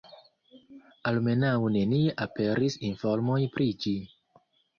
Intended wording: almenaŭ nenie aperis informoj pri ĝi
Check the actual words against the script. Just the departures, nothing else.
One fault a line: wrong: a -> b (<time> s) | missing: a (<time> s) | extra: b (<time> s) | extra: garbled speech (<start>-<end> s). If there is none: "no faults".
no faults